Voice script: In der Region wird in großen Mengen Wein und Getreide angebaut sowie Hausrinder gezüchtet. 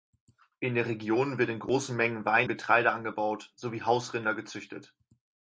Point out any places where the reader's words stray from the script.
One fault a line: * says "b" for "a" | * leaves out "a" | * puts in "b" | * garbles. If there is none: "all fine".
* leaves out "und"